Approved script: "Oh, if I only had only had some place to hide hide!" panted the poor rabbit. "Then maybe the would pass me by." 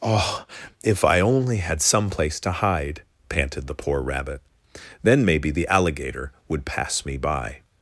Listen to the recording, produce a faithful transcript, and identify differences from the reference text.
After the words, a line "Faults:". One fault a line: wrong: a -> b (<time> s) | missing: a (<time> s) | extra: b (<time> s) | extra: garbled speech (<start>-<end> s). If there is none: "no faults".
"Oh, if I only had some place to hide!" panted the poor rabbit. "Then maybe the alligator would pass me by."
Faults:
missing: only had (1.8 s)
missing: hide (3.0 s)
extra: alligator (5.7 s)